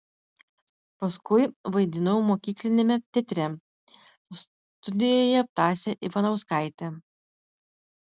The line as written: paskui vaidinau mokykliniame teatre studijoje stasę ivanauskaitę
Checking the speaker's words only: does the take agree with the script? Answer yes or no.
yes